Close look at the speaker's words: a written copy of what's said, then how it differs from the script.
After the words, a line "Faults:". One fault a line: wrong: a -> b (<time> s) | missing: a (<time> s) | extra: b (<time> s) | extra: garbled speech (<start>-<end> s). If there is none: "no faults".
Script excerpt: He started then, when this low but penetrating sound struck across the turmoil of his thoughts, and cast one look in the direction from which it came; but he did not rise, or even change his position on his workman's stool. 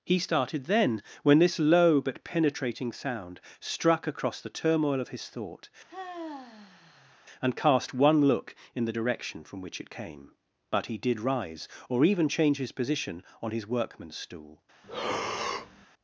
He started then, when this low but penetrating sound struck across the turmoil of his thought, and cast one look in the direction from which it came; but he did rise, or even change his position on his workman's stool.
Faults:
wrong: thoughts -> thought (5.3 s)
missing: not (11.2 s)